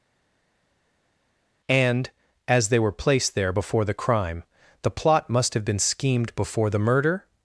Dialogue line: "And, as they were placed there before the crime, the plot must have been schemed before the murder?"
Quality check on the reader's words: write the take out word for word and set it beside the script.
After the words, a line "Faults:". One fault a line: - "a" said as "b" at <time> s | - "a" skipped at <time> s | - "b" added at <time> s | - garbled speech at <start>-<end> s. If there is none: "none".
"And, as they were placed there before the crime, the plot must have been schemed before the murder?"
Faults:
none